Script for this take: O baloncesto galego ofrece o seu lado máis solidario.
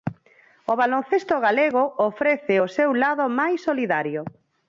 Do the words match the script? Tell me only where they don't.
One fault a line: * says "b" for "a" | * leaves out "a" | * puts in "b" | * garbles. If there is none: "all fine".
all fine